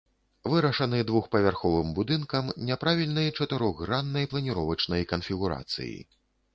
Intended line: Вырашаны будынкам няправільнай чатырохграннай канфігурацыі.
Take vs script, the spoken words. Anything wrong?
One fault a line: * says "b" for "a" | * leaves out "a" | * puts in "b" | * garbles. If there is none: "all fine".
* puts in "двухпавярховым"
* puts in "планіровачнай"